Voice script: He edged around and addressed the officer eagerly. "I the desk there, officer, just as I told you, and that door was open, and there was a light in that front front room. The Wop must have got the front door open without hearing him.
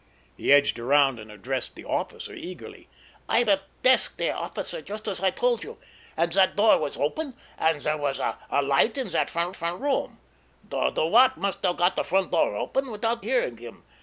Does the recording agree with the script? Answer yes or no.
yes